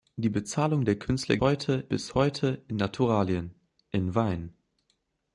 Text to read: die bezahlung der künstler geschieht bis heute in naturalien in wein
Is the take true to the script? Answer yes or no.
no